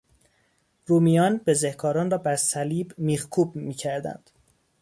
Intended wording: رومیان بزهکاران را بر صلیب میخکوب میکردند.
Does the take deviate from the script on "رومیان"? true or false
false